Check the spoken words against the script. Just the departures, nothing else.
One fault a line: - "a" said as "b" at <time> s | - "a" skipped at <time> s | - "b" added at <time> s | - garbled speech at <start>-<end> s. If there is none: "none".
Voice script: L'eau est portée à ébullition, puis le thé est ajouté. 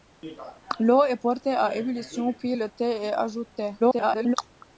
- garbled speech at 3.8-4.4 s